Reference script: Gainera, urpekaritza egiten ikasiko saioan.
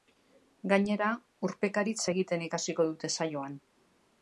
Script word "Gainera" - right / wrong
right